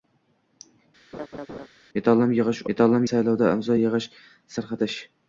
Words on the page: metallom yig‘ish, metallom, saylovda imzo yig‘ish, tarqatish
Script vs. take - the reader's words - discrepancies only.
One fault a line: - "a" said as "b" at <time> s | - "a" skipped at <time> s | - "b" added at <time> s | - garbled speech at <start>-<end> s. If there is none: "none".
none